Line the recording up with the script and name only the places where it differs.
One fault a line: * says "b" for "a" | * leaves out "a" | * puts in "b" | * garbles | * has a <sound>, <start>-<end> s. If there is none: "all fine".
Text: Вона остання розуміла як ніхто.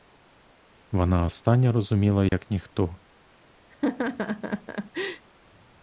* has a dropout, 2.3-2.3 s
* has a laugh, 3.7-5.3 s